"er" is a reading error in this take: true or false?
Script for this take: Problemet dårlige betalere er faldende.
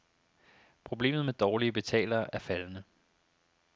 false